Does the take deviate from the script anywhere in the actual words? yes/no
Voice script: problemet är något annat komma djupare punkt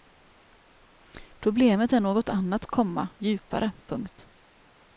no